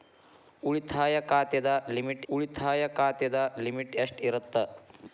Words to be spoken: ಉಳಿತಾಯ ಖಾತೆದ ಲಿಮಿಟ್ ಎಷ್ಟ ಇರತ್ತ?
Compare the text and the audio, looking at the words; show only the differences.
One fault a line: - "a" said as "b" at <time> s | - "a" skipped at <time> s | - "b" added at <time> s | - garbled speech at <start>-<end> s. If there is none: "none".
- "ಉಳಿತಾಯ ಖಾತೆದ ಲಿಮಿಟ್" added at 2.3 s